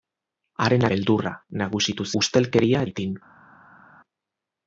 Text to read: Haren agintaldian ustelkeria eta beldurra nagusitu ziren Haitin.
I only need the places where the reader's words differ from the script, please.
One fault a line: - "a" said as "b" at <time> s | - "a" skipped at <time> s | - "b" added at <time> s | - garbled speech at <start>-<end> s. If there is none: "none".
- "agintaldian ustelkeria eta" skipped at 0.8 s
- "ziren" said as "ustelkeria" at 2.2 s